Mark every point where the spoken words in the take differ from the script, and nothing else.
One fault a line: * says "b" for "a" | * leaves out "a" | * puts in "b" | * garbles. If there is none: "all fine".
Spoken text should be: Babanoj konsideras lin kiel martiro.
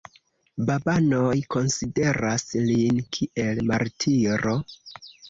all fine